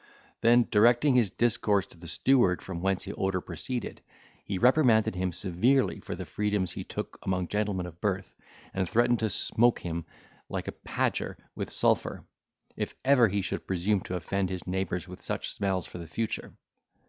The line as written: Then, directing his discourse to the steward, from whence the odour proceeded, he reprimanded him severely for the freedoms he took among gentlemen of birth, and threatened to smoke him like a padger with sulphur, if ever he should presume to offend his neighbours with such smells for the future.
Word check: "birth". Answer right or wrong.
right